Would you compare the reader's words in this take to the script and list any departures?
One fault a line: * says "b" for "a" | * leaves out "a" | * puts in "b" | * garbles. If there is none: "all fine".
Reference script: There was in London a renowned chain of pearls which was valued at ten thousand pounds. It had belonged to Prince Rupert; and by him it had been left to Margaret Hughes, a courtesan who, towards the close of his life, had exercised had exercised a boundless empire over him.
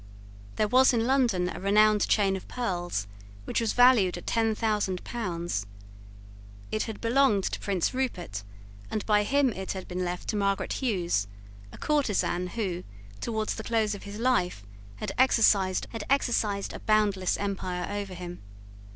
all fine